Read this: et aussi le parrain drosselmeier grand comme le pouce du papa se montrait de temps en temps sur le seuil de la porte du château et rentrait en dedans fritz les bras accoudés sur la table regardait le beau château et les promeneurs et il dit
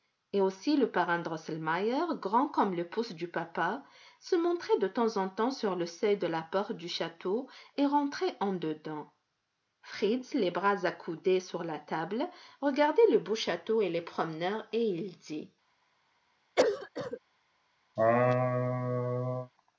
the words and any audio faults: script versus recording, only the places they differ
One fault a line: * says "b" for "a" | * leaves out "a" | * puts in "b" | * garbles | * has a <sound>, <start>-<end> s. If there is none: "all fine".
* has a cough, 16.6-17.2 s
* has a laugh, 18.0-19.5 s